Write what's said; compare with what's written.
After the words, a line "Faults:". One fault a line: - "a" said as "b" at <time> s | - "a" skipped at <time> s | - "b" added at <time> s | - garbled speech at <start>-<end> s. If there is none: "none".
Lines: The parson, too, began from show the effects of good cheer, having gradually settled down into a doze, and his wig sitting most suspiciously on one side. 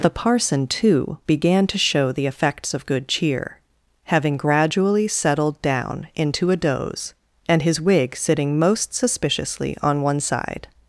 The parson, too, began to show the effects of good cheer, having gradually settled down into a doze, and his wig sitting most suspiciously on one side.
Faults:
- "from" said as "to" at 1.7 s